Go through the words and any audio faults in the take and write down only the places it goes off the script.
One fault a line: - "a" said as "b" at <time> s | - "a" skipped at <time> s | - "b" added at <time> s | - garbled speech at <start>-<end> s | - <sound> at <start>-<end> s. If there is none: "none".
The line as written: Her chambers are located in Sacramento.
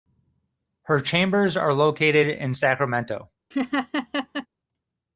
- laugh at 3.5-4.5 s